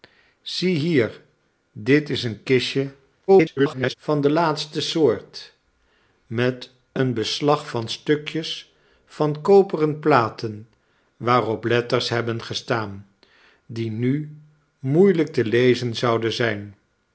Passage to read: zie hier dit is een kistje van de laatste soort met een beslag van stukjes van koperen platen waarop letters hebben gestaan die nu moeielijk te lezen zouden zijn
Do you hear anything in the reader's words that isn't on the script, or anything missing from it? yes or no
yes